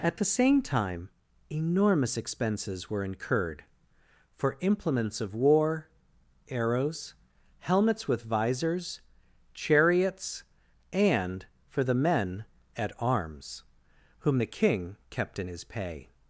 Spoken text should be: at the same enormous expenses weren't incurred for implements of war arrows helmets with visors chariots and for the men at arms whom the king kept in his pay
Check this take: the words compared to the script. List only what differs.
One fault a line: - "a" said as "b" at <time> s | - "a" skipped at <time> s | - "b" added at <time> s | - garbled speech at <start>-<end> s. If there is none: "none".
- "time" added at 0.6 s
- "weren't" said as "were" at 2.9 s